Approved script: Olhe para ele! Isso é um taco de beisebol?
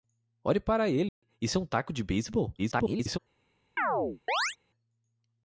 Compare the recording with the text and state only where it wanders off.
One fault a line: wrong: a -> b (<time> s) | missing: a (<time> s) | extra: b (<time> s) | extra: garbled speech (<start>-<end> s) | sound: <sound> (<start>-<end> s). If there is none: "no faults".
sound: dropout (1.1-1.2 s)
extra: garbled speech (2.6-3.2 s)
sound: chirp (3.8-4.6 s)